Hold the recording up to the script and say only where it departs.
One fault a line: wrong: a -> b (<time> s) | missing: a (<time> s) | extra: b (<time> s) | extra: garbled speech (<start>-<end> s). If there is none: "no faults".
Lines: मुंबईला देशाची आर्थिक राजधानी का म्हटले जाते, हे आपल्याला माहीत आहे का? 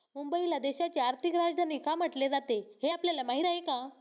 no faults